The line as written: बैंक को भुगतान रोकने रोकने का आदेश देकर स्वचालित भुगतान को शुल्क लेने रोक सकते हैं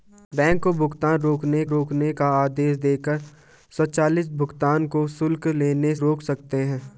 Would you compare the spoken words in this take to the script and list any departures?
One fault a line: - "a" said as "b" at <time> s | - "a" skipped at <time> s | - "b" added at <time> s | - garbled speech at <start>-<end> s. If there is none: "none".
none